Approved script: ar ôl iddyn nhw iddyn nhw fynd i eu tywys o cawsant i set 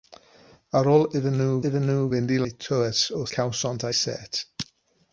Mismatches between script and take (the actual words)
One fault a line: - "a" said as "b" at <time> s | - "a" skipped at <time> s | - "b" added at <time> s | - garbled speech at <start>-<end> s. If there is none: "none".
none